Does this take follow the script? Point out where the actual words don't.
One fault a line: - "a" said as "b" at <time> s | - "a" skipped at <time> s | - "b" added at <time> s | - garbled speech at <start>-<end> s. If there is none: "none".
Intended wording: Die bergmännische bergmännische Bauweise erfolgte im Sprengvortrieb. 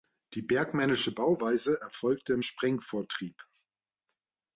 - "bergmännische" skipped at 1.1 s